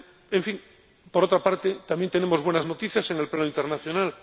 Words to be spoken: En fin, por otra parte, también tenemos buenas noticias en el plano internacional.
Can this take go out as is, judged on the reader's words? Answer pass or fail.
pass